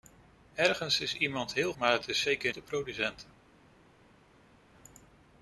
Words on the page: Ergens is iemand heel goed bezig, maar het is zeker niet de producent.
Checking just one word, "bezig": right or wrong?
wrong